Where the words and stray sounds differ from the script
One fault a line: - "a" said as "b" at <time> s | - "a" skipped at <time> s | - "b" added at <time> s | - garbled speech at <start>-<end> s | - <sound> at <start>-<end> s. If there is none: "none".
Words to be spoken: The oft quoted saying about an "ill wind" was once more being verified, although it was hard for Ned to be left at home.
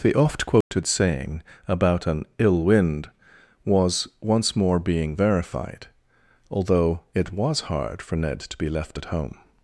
- dropout at 0.6-0.7 s